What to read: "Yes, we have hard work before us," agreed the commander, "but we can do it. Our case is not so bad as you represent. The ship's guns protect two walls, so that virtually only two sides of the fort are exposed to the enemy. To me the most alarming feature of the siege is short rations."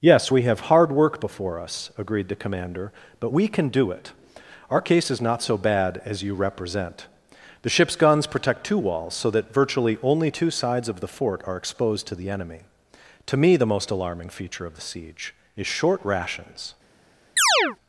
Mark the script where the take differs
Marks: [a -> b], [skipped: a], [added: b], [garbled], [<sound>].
"Yes, we have hard work before us," agreed the commander, "but we can do it. Our case is not so bad as you represent. The ship's guns protect two walls, so that virtually only two sides of the fort are exposed to the enemy. To me the most alarming feature of the siege is short rations." [chirp]